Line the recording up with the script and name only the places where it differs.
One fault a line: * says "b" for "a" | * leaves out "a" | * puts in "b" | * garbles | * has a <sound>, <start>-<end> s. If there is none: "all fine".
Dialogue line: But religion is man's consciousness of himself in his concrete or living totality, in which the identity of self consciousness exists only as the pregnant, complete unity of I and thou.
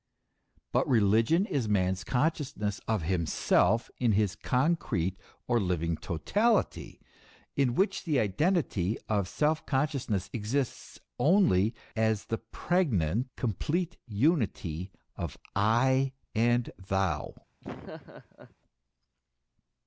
* has a laugh, 17.6-18.6 s